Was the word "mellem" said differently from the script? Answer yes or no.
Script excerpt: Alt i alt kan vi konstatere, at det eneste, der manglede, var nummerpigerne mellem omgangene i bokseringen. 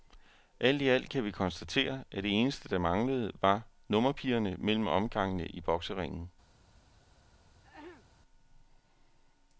no